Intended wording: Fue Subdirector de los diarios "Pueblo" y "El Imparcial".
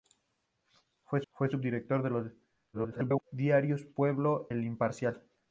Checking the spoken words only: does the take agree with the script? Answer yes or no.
no